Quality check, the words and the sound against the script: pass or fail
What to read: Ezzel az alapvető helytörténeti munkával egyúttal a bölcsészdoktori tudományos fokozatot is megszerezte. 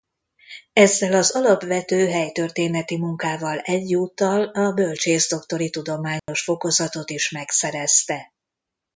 fail